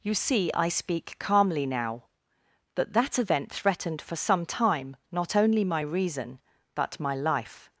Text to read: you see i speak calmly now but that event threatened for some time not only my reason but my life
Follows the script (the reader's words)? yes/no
yes